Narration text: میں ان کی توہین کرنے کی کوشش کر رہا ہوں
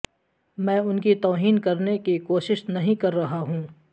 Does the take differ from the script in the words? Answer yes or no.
yes